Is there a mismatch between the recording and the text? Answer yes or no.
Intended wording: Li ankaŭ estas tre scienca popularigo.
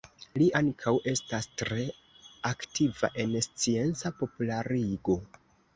yes